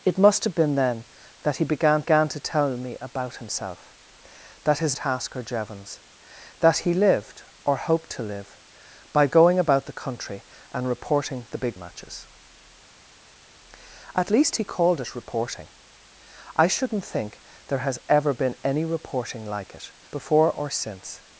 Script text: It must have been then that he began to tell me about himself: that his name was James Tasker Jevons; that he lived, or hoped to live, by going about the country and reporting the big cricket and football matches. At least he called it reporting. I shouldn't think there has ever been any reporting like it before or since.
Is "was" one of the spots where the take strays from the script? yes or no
yes